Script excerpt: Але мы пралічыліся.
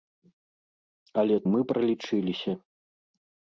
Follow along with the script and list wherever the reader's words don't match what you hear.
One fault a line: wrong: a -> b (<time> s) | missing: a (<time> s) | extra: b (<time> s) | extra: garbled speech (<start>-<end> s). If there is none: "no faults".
no faults